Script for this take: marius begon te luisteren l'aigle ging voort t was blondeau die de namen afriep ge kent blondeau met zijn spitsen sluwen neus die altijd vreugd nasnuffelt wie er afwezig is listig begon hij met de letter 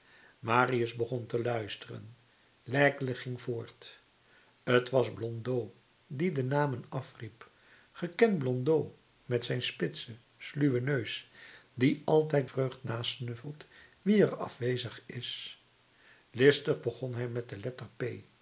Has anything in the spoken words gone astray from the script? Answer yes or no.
no